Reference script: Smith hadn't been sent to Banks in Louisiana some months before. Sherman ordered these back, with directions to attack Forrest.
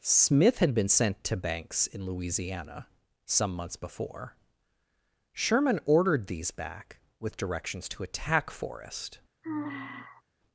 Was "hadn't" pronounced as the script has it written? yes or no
no